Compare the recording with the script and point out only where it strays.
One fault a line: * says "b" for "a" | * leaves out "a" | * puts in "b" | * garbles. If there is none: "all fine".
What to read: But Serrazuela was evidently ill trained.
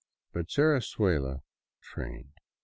* leaves out "was evidently ill"